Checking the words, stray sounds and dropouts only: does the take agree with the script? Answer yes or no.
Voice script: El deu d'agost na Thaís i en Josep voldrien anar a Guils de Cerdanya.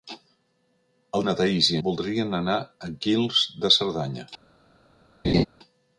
no